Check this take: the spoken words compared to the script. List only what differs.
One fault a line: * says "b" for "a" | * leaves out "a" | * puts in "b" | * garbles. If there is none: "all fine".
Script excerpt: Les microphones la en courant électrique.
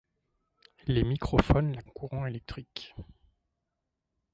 all fine